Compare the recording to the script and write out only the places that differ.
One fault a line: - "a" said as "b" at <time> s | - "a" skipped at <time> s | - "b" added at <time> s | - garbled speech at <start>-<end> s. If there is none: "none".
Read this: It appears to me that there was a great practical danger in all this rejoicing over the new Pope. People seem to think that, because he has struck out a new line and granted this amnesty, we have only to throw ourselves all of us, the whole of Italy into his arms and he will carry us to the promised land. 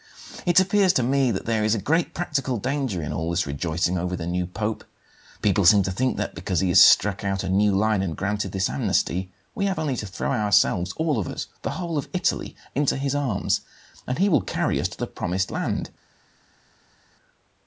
- "was" said as "is" at 1.6 s